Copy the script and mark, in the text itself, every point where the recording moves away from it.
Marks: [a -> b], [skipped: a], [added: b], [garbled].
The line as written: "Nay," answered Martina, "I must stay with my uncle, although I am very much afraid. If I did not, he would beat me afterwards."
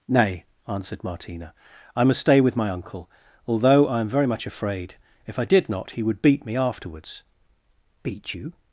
"Nay," answered Martina, "I must stay with my uncle, although I am very much afraid. If I did not, he would beat me afterwards." [added: Beat you]